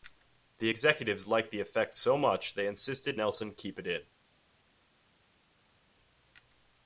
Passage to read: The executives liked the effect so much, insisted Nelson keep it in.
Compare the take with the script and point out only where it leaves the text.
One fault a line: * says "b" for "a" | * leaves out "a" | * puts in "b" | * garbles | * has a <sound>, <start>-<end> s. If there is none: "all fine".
* puts in "they"